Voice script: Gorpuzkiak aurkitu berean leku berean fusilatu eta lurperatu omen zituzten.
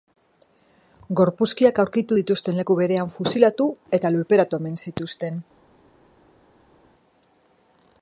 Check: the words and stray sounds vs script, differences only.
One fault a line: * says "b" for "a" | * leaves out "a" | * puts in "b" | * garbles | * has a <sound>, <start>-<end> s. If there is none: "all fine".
* says "dituzten" for "berean"